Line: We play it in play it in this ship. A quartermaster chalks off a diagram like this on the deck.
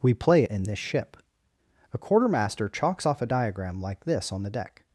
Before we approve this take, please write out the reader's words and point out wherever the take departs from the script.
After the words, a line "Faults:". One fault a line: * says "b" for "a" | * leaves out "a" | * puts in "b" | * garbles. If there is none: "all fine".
We play it in this ship. A quartermaster chalks off a diagram like this on the deck.
Faults:
* leaves out "play it in"